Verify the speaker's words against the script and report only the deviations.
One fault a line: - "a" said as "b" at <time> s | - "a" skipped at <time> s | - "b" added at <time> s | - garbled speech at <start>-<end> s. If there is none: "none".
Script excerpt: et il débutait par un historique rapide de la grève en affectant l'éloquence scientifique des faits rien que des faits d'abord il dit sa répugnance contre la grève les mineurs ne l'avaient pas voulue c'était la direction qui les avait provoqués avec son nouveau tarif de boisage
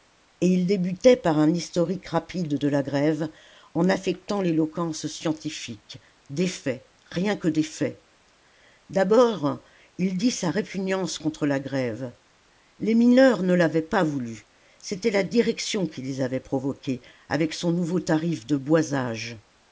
none